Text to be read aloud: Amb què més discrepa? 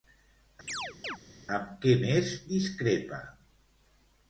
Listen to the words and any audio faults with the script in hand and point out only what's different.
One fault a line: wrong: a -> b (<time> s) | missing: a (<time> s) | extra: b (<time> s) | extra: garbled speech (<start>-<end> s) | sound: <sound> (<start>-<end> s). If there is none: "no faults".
sound: chirp (0.7-1.2 s)